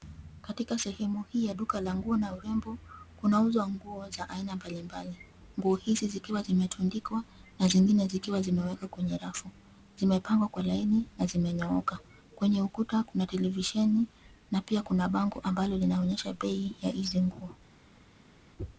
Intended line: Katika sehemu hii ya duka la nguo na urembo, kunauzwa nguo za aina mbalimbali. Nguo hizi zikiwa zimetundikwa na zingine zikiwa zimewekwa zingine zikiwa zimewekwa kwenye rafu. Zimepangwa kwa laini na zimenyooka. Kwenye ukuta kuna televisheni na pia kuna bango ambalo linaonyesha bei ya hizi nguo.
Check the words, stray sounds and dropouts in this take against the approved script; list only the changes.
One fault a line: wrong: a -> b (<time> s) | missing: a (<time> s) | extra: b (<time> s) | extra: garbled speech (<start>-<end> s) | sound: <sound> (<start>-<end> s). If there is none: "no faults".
missing: zingine zikiwa zimewekwa (8.9 s)